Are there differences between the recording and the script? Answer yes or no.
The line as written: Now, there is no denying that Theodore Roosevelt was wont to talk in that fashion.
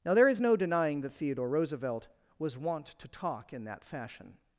no